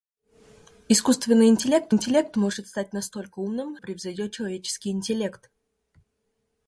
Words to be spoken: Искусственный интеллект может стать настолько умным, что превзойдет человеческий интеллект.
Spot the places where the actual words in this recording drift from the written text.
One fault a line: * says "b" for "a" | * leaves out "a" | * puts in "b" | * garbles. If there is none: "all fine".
* puts in "интеллект"
* leaves out "что"